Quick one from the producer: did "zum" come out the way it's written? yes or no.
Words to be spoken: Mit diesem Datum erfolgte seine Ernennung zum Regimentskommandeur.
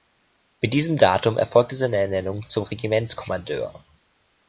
yes